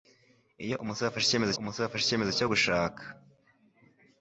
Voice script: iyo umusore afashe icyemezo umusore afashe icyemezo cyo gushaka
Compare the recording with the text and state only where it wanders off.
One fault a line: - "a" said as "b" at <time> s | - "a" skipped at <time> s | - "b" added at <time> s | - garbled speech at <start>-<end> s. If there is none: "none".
none